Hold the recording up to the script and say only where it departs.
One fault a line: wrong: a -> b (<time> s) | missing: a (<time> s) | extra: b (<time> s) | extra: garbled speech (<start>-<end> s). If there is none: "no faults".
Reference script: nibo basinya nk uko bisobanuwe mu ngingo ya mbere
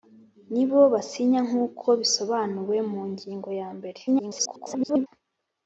extra: garbled speech (4.1-5.1 s)